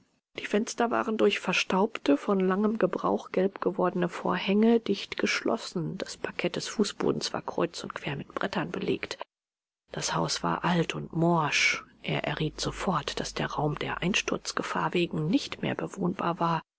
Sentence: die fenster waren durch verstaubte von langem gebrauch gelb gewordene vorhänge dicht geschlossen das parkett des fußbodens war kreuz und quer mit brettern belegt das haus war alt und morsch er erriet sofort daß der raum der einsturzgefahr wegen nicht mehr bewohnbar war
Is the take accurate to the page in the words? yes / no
yes